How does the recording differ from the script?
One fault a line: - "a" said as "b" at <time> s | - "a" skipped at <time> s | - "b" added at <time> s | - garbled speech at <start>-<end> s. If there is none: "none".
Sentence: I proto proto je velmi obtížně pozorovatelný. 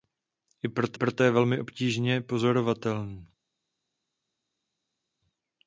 none